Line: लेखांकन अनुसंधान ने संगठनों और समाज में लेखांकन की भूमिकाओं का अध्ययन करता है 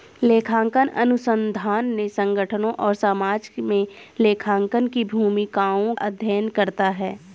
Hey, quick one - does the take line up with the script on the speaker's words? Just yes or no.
no